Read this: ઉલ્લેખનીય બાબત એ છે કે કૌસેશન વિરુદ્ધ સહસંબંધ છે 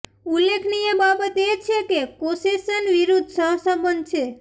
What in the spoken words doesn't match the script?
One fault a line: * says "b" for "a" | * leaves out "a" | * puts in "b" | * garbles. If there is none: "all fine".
all fine